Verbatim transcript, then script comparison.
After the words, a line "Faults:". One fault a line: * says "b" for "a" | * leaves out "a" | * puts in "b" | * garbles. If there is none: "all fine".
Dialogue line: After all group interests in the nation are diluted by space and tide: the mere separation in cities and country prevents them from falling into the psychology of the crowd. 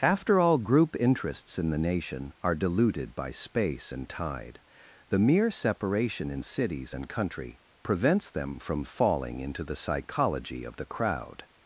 After all group interests in the nation are diluted by space and tide: the mere separation in cities and country prevents them from falling into the psychology of the crowd.
Faults:
all fine